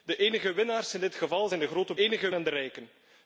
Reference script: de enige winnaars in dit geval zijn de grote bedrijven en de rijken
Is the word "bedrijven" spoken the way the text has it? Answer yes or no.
no